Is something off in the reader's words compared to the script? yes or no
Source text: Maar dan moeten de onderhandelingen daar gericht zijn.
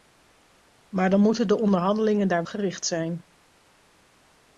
no